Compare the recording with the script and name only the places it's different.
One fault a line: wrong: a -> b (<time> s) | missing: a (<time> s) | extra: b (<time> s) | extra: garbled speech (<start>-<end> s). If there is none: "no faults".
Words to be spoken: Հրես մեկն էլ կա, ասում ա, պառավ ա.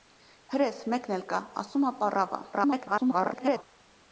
extra: garbled speech (2.5-3.6 s)